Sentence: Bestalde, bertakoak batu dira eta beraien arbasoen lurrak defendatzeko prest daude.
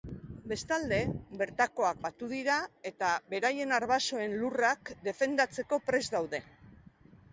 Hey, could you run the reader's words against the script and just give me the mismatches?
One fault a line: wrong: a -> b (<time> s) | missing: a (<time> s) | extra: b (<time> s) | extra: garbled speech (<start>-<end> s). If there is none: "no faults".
no faults